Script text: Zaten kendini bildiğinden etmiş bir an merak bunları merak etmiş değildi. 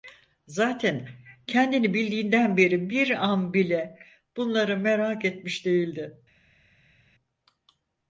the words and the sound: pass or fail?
fail